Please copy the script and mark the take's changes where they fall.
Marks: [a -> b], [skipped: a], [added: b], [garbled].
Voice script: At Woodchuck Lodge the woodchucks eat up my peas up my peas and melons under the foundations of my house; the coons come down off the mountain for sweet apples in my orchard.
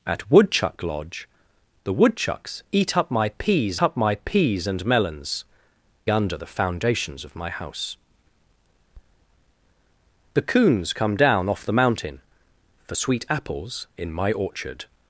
At Woodchuck Lodge the woodchucks eat up my peas up my peas and melons under the foundations of my house; the coons come down off the mountain for sweet apples in my orchard.